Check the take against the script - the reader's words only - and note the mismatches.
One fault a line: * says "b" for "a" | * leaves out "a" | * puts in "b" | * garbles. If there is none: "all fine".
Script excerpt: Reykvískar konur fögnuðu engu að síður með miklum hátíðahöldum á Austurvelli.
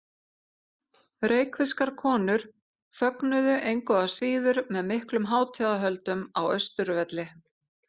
all fine